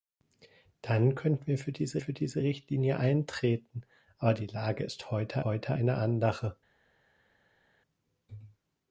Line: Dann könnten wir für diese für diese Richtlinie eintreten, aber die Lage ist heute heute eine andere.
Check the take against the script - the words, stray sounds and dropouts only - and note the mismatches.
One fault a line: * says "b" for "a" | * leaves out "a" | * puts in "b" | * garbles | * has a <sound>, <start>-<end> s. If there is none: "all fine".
all fine